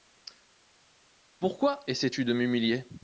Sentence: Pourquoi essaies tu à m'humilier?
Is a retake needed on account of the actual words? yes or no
yes